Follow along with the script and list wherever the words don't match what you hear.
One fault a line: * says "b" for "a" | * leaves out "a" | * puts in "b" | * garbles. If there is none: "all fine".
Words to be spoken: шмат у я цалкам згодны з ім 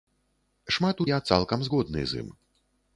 all fine